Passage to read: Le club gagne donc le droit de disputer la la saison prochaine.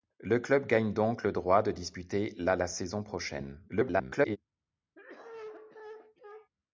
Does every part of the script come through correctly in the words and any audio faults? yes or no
no